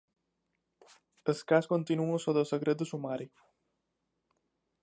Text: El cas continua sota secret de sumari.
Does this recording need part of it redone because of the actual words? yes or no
no